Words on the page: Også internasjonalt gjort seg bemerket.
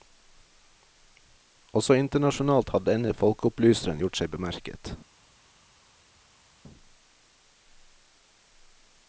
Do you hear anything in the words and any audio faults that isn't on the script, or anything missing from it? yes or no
yes